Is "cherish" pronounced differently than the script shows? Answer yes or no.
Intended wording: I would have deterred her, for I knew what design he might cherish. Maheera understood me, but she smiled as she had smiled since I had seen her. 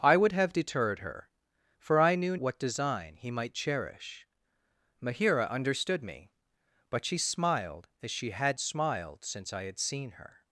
no